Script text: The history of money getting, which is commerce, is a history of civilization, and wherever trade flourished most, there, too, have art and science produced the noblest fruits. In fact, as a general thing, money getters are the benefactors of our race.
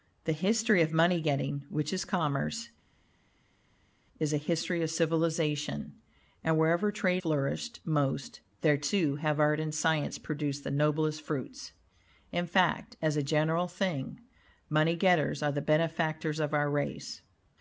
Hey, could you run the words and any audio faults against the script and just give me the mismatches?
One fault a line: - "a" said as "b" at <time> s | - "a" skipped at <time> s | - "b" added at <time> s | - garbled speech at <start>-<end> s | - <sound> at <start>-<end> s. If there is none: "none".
none